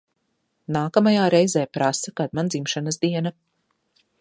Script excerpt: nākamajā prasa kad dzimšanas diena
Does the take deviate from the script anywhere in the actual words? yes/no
yes